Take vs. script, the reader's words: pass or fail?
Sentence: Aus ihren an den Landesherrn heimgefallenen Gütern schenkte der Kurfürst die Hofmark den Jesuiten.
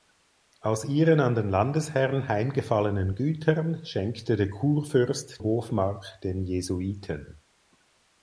fail